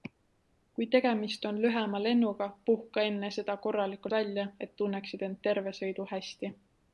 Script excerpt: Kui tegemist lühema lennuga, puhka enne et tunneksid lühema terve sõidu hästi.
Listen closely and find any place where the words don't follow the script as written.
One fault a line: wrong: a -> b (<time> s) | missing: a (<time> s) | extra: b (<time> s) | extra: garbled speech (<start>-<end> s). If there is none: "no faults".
extra: on (1.5 s)
extra: seda korralikult välja (3.4 s)
wrong: lühema -> end (5.3 s)